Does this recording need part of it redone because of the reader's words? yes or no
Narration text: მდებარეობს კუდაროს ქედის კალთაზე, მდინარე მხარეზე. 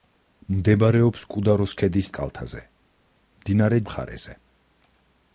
no